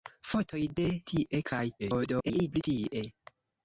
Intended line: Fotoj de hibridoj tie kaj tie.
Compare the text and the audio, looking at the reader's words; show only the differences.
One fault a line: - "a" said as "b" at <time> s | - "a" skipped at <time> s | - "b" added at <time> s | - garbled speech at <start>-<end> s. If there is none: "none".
- "hibridoj" skipped at 0.8 s
- garbled speech at 1.8-2.6 s